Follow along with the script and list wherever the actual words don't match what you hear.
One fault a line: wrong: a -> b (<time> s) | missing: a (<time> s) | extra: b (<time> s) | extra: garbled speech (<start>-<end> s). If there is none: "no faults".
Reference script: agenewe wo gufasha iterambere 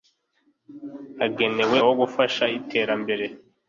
no faults